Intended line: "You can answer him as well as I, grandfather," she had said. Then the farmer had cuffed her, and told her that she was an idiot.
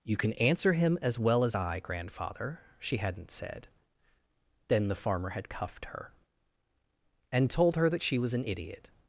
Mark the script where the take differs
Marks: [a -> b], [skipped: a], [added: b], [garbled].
"You can answer him as well as I, grandfather," she [had -> hadn't] said. Then the farmer had cuffed her, and told her that she was an idiot.